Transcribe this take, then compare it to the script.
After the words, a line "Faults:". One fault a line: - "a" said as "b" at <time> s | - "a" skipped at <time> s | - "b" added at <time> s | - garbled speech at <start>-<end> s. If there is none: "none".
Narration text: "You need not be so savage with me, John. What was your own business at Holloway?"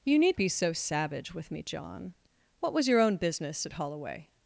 "You need be so savage with me, John. What was your own business at Holloway?"
Faults:
- "not" skipped at 0.4 s